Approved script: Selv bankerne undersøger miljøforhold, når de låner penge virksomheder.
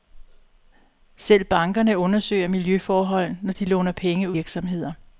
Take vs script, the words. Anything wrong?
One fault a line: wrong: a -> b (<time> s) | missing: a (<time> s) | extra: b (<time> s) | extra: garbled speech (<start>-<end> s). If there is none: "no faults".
no faults